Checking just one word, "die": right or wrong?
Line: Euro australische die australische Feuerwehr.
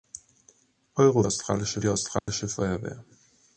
right